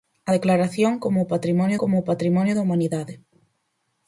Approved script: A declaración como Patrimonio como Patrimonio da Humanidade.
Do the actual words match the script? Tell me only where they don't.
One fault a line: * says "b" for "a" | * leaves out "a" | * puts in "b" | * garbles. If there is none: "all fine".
all fine